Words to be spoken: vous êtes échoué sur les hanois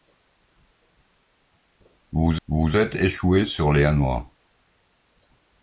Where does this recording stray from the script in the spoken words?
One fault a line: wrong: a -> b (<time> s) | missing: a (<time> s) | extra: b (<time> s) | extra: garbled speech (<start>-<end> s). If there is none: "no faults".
extra: vous (2.5 s)